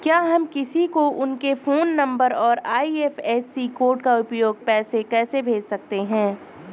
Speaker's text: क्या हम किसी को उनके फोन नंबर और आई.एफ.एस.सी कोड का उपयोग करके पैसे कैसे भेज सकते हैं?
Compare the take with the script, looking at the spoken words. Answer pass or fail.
fail